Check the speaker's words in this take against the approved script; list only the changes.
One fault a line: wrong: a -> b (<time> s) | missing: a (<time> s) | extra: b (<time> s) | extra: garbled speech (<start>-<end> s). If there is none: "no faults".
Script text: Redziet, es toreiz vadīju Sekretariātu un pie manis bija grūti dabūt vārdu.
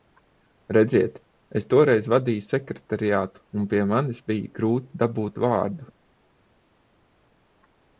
no faults